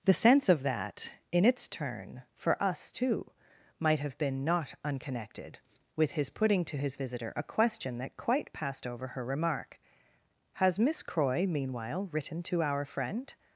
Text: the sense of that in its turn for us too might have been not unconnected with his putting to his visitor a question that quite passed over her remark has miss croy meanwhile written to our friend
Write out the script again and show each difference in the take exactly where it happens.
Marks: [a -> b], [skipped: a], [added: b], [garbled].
the sense of that in its turn for us too might have been not unconnected with his putting to his visitor a question that quite passed over her remark has miss croy meanwhile written to our friend